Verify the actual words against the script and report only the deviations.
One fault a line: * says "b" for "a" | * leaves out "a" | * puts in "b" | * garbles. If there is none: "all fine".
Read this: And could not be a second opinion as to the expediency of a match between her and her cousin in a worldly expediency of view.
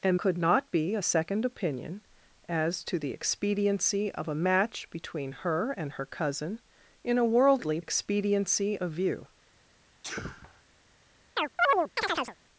all fine